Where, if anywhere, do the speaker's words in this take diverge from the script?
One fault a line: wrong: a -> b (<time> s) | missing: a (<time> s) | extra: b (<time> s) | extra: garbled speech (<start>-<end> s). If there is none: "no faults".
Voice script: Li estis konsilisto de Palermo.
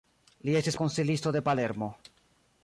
no faults